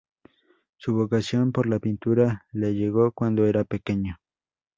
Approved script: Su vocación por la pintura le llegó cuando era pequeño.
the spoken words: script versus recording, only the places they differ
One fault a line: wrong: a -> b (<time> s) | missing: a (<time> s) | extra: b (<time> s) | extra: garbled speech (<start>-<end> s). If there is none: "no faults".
no faults